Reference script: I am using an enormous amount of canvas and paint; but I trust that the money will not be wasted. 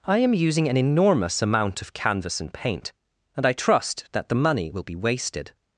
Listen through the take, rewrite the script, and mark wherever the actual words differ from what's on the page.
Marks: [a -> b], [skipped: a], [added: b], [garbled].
I am using an enormous amount of canvas and paint; [but -> and] I trust that the money will [skipped: not] be wasted.